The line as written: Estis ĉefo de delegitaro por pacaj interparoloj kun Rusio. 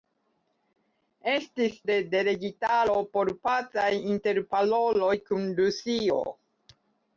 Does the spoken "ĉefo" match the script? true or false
false